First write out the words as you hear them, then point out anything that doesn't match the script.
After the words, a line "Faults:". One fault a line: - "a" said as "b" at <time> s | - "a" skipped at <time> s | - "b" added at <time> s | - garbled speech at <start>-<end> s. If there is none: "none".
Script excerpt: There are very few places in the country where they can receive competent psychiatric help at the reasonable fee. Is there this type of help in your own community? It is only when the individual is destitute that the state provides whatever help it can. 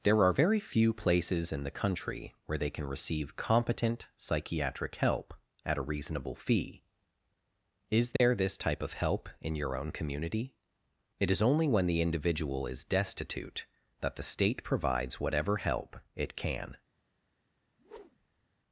There are very few places in the country where they can receive competent psychiatric help at a reasonable fee. Is there this type of help in your own community? It is only when the individual is destitute that the state provides whatever help it can.
Faults:
- "the" said as "a" at 5.8 s